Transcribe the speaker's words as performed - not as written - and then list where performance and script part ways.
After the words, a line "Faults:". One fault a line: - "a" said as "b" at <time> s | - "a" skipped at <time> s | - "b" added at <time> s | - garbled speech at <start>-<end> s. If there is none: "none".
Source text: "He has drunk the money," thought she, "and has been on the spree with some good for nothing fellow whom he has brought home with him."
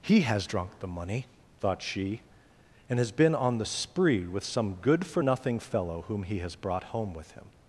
"He has drunk the money," thought she, "and has been on the spree with some good for nothing fellow whom he has brought home with him."
Faults:
none